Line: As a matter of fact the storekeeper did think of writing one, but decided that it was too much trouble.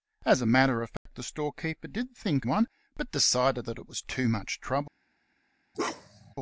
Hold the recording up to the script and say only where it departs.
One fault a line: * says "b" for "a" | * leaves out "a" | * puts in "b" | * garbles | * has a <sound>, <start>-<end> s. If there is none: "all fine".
* has a dropout, 1.0-1.1 s
* leaves out "of writing"
* has a bark, 5.7-6.3 s